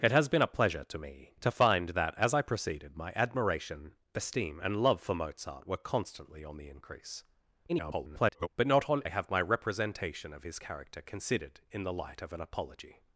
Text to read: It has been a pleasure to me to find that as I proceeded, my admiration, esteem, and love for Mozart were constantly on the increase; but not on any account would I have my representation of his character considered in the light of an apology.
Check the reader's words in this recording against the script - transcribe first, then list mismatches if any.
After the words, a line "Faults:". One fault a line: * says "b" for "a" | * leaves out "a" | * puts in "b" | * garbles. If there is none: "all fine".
It has been a pleasure to me to find that as I proceeded, my admiration, esteem, and love for Mozart were constantly on the increase; [garbled] but not on I have my representation of his character considered in the light of an apology.
Faults:
* garbles
* leaves out "any account would"